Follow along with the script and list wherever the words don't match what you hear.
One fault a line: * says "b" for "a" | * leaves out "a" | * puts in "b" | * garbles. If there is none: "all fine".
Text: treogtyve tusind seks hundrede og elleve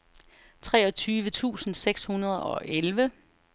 all fine